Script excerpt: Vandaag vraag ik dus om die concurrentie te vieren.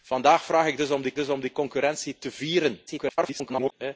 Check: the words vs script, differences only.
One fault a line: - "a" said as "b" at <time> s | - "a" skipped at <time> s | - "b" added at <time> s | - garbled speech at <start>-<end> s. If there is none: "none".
- "dus om die" added at 1.2 s
- garbled speech at 2.9-3.7 s